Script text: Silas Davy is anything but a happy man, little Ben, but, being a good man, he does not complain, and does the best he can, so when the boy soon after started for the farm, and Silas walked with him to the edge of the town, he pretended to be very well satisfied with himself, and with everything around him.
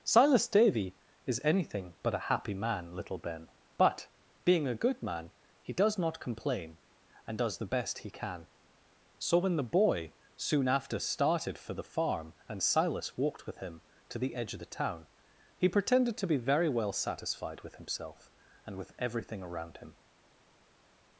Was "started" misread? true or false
false